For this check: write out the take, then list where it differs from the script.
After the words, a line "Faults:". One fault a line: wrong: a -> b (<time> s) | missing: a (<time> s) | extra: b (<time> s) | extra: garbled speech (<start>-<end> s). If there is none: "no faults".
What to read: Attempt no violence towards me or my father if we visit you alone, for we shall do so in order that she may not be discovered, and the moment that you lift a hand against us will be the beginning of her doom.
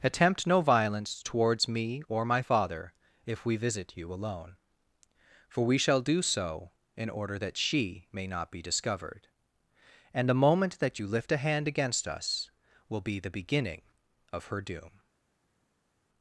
Attempt no violence towards me or my father if we visit you alone, for we shall do so in order that she may not be discovered, and the moment that you lift a hand against us will be the beginning of her doom.
Faults:
no faults